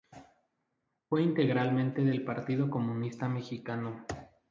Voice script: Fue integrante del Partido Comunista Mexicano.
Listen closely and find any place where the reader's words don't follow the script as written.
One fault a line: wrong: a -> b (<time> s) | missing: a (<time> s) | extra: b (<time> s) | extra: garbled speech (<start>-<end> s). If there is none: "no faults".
no faults